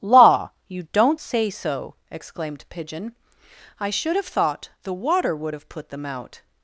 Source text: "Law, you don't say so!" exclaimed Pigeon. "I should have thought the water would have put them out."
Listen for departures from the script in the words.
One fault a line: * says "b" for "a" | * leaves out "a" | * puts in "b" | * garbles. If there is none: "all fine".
all fine